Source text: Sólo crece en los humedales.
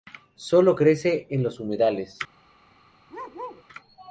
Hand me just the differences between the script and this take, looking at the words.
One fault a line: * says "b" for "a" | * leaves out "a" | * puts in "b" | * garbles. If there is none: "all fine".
all fine